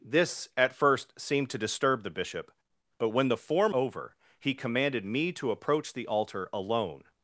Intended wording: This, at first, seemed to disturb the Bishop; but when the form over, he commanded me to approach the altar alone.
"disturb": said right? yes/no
yes